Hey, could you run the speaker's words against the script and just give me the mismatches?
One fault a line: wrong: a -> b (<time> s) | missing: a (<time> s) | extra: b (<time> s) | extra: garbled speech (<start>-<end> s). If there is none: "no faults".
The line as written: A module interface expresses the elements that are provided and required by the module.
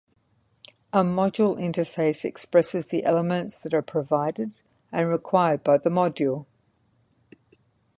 no faults